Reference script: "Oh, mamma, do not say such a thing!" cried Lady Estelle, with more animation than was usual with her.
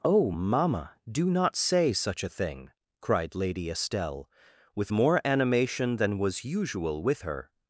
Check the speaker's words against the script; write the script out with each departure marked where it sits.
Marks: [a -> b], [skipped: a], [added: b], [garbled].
"Oh, mamma, do not say such a thing!" cried Lady Estelle, with more animation than was usual with her.